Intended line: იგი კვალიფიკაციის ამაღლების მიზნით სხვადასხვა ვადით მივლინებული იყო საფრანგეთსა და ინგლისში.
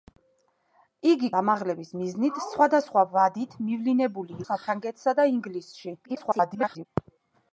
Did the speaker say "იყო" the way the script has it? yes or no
no